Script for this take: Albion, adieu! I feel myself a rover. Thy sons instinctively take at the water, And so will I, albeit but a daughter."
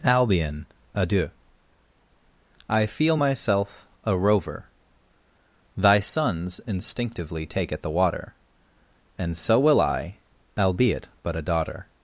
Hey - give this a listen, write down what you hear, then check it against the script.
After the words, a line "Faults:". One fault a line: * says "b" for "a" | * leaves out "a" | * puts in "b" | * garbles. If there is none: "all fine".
Albion, adieu! I feel myself a rover. Thy sons instinctively take at the water, And so will I, albeit but a daughter."
Faults:
all fine